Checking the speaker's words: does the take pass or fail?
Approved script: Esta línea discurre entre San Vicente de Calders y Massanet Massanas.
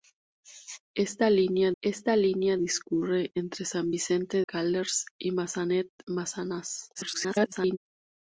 fail